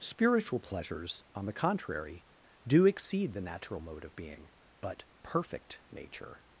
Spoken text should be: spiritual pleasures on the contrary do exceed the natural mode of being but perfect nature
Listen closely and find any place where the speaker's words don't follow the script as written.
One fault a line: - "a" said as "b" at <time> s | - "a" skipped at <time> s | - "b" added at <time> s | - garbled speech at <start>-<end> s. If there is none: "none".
none